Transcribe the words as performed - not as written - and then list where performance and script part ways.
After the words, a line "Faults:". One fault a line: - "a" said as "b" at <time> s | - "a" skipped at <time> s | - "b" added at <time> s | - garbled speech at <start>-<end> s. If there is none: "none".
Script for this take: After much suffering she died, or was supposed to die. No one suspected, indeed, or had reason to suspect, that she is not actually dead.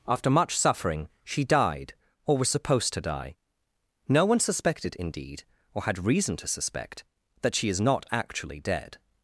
After much suffering she died, or was supposed to die. No one suspected, indeed, or had reason to suspect, that she is not actually dead.
Faults:
none